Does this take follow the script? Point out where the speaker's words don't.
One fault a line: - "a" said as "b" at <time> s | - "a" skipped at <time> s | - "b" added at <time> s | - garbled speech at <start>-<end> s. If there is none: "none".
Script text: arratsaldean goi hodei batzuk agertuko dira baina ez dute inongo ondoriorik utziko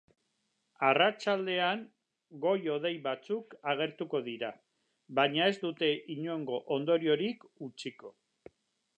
none